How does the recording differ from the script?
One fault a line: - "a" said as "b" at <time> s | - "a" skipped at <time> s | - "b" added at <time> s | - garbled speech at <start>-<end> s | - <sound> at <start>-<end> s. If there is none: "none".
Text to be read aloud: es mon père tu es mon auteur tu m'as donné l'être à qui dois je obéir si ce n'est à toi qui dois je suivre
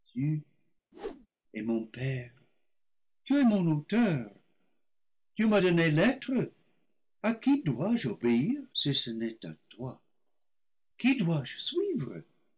- whoosh at 0.9-1.3 s